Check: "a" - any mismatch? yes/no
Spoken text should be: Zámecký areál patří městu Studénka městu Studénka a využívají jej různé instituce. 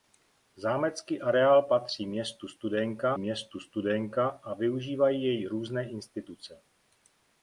no